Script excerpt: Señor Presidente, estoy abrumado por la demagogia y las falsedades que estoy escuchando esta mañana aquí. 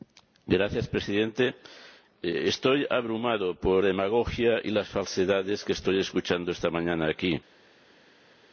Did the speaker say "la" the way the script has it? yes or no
no